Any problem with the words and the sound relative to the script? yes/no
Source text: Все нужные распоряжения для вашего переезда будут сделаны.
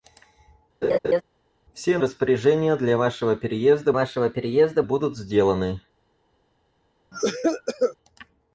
yes